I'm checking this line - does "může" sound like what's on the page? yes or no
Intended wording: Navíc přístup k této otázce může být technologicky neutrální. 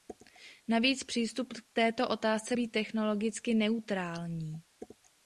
no